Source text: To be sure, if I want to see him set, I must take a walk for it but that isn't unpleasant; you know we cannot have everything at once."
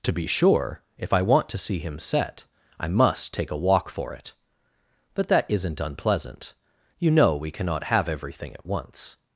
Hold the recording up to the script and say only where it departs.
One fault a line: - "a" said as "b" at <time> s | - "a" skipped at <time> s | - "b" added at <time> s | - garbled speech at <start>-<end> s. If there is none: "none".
none